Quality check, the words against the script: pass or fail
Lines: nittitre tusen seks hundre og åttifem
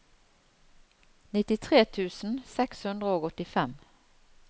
pass